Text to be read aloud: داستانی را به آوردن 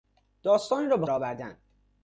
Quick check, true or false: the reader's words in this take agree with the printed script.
true